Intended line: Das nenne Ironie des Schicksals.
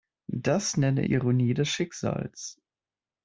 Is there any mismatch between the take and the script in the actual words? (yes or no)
no